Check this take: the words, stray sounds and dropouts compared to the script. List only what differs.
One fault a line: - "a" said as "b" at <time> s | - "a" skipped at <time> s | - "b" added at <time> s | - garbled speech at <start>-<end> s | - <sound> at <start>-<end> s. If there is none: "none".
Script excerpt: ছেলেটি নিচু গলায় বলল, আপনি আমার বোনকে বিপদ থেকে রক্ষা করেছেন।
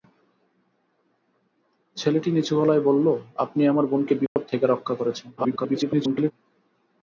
- dropout at 4.3-4.4 s
- garbled speech at 5.4-6.3 s